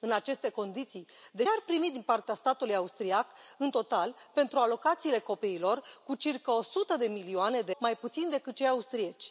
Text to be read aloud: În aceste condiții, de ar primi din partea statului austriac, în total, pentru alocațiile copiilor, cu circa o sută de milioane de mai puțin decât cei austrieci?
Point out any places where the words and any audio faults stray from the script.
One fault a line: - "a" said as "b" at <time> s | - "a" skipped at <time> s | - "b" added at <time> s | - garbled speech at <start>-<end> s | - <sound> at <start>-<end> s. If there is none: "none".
none